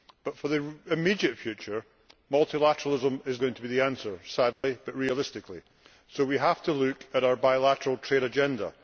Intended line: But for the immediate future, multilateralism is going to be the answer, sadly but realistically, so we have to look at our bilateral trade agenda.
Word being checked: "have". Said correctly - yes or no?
yes